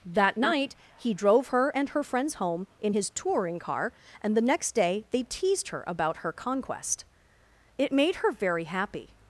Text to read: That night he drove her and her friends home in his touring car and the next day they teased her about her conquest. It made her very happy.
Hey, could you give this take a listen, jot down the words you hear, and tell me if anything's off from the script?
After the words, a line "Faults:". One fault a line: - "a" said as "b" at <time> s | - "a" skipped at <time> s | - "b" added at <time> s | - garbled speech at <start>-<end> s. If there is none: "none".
That night he drove her and her friends home in his touring car and the next day they teased her about her conquest. It made her very happy.
Faults:
none